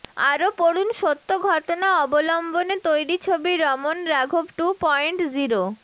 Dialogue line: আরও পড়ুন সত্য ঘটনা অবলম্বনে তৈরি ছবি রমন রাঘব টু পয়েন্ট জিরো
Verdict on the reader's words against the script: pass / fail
pass